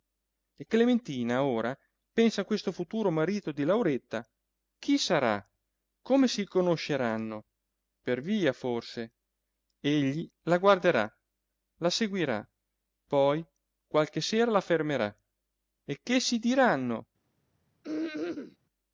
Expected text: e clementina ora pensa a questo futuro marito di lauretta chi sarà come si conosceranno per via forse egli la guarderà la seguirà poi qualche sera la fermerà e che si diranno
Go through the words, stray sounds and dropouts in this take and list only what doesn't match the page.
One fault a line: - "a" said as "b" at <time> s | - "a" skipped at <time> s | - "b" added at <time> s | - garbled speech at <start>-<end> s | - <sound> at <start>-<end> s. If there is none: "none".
- throat clearing at 17.8-18.6 s